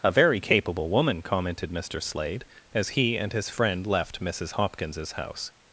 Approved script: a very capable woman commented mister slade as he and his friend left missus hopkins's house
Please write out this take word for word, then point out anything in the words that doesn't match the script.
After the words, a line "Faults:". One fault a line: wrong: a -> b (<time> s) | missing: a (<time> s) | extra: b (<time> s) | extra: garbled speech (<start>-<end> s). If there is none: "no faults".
a very capable woman commented mister slade as he and his friend left missus hopkins's house
Faults:
no faults